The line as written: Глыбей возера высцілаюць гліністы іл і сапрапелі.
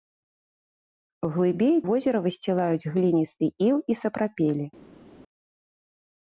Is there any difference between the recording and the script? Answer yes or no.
no